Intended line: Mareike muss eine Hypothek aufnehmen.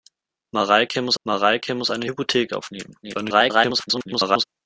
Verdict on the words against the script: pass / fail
fail